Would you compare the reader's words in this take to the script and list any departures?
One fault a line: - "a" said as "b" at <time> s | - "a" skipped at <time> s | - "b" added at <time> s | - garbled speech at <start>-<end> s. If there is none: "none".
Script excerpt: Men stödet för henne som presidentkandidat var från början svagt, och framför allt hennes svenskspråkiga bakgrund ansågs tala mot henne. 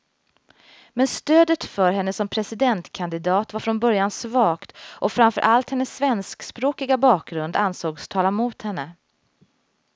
none